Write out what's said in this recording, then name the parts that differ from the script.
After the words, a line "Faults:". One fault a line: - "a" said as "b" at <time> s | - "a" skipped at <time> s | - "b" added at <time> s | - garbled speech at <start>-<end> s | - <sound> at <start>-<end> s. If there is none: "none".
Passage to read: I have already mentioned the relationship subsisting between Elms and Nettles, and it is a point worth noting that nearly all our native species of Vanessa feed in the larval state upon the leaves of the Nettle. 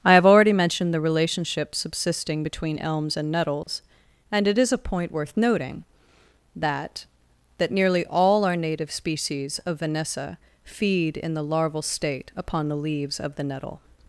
I have already mentioned the relationship subsisting between Elms and Nettles, and it is a point worth noting that that nearly all our native species of Vanessa feed in the larval state upon the leaves of the Nettle.
Faults:
- dropout at 3.6-3.7 s
- "that" added at 7.6 s